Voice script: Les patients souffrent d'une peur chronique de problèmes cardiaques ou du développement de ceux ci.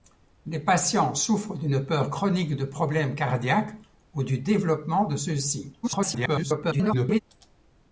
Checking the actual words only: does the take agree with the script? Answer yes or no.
no